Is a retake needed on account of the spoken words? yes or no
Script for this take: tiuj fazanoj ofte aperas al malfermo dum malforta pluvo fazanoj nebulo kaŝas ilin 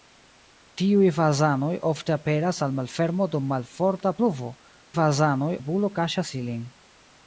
no